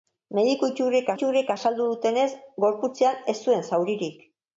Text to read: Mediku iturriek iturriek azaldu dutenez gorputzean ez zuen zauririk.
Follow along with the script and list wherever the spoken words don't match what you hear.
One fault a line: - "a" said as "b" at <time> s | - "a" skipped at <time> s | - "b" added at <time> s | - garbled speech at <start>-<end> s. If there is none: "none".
none